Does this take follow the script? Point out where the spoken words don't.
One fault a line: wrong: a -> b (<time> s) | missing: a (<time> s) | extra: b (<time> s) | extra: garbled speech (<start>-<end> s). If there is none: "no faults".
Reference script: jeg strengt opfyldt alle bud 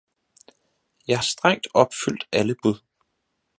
no faults